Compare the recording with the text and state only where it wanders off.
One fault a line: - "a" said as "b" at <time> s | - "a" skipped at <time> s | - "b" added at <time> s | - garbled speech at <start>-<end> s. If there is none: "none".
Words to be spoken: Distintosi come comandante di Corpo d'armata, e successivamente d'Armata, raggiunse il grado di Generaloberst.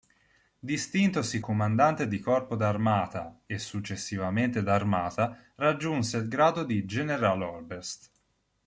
- "come" skipped at 1.4 s